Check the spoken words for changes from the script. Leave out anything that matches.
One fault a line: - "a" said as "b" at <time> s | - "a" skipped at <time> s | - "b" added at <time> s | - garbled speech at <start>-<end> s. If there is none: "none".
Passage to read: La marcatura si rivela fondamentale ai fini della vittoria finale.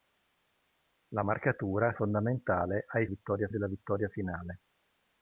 - "si rivela" skipped at 1.9 s
- "fini" said as "vittoria" at 3.1 s